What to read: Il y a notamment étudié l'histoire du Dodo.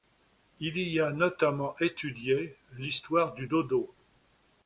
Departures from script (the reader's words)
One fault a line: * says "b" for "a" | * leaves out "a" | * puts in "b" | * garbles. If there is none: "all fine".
all fine